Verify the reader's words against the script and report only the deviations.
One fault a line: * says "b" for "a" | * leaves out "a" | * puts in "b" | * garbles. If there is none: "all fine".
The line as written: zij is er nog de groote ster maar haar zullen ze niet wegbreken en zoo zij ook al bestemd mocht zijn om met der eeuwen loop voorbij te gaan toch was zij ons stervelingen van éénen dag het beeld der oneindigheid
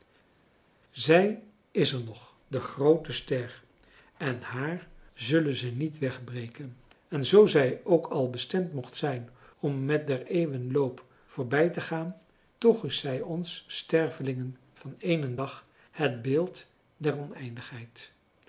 * says "en" for "maar"
* says "is" for "was"